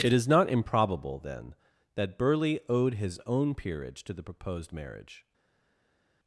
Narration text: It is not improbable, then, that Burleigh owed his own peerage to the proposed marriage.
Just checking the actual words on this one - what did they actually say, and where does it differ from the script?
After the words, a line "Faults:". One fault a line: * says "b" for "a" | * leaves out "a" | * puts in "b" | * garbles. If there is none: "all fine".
It is not improbable, then, that Burleigh owed his own peerage to the proposed marriage.
Faults:
all fine